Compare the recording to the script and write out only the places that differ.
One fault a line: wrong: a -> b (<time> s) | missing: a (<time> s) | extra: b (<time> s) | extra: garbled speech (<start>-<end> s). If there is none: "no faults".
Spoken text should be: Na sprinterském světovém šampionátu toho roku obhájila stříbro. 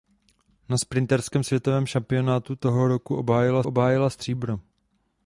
extra: obhájila (3.6 s)